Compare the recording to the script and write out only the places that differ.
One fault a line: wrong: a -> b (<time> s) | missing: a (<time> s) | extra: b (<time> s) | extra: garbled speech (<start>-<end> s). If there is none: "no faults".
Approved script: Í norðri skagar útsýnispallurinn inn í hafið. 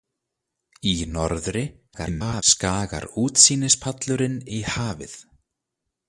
extra: garbled speech (1.9-2.4 s)
missing: inn (4.4 s)